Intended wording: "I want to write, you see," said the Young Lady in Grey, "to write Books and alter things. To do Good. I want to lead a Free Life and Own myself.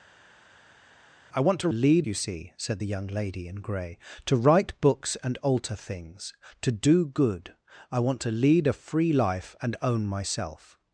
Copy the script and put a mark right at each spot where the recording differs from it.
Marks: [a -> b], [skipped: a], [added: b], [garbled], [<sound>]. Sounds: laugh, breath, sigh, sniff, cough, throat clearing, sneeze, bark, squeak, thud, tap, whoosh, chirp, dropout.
"I want to [write, -> lead] you see," said the Young Lady in Grey, "to write Books and alter things. To do Good. I want to lead a Free Life and Own myself.